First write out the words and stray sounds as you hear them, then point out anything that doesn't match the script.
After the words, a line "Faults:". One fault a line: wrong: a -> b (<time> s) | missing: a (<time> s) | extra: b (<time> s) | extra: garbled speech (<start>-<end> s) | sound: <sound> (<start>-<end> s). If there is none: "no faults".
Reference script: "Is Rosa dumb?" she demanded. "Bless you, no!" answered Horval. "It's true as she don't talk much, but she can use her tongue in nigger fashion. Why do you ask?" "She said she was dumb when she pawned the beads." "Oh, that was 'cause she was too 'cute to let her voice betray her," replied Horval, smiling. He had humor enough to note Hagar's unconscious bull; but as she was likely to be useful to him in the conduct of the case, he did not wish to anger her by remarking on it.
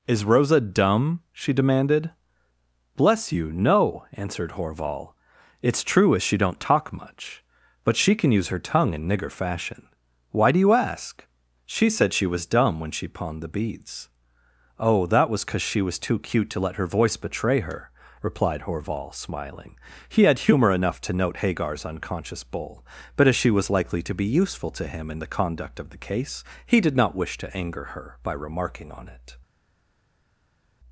"Is Rosa dumb?" she demanded. "Bless you, no!" answered Horval. "It's true as she don't talk much, but she can use her tongue in nigger fashion. Why do you ask?" "She said she was dumb when she pawned the beads." "Oh, that was 'cause she was too 'cute to let her voice betray her," replied Horval, smiling. He had humor enough to note Hagar's unconscious bull; but as she was likely to be useful to him in the conduct of the case, he did not wish to anger her by remarking on it.
Faults:
no faults